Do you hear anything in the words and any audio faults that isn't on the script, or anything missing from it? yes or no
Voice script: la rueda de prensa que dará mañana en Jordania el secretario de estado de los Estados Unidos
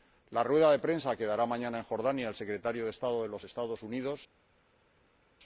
no